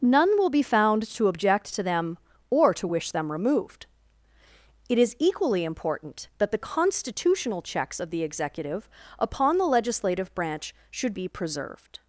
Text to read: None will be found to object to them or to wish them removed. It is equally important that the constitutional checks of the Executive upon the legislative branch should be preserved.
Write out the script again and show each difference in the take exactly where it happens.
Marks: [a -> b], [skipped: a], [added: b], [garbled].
None will be found to object to them or to wish them removed. It is equally important that the constitutional checks of the Executive upon the legislative branch should be preserved.